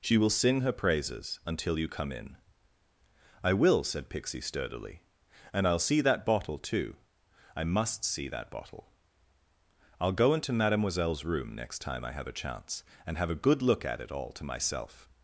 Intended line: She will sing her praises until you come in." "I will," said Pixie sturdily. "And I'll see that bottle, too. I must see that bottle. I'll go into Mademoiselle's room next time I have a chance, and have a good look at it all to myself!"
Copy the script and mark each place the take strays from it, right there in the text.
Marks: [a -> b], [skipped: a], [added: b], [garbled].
She will sing her praises until you come in." "I will," said Pixie sturdily. "And I'll see that bottle, too. I must see that bottle. I'll go into Mademoiselle's room next time I have a chance, and have a good look at it all to myself!"